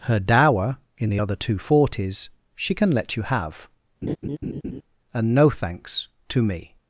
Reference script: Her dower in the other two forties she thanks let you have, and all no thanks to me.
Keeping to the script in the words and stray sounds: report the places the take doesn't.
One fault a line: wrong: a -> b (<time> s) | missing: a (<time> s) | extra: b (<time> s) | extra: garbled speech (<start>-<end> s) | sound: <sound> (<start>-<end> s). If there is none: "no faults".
wrong: thanks -> can (2.7 s)
sound: laugh (4.0-4.8 s)
missing: all (5.3 s)